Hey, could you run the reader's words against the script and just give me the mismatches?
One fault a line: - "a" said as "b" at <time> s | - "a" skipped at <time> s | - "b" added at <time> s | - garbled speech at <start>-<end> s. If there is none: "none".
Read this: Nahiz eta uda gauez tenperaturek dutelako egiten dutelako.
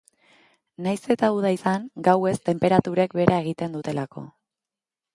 - "izan" added at 1.5 s
- "dutelako" said as "behera" at 3.2 s